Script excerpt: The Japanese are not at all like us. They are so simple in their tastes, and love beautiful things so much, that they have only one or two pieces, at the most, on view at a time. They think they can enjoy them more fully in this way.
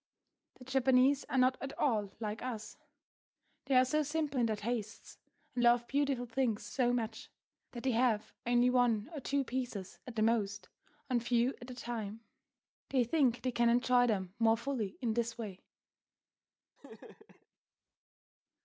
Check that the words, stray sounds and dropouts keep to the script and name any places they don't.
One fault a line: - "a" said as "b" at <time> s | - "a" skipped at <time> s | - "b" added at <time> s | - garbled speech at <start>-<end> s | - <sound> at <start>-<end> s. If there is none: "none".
- laugh at 16.8-17.5 s